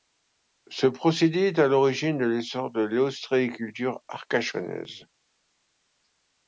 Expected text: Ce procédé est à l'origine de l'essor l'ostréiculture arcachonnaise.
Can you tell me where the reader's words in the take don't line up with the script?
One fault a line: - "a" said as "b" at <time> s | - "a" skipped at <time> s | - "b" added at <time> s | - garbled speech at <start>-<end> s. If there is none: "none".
- "de" added at 2.7 s